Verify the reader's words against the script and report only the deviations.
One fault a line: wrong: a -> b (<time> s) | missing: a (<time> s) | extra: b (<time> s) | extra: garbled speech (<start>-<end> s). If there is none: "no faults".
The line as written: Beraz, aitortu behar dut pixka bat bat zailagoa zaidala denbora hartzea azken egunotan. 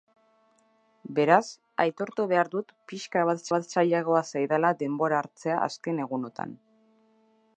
no faults